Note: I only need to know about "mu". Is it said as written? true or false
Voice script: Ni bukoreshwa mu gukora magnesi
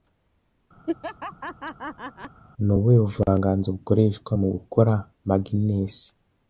true